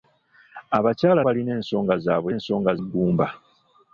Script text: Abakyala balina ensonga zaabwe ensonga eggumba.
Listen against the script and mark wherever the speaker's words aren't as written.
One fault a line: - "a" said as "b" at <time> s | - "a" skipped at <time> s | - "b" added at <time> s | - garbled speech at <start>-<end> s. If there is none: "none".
none